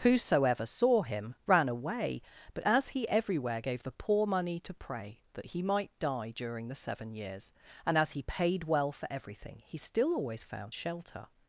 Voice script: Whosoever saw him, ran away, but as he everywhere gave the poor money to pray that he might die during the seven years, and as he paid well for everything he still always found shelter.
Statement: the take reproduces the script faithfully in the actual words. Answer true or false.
true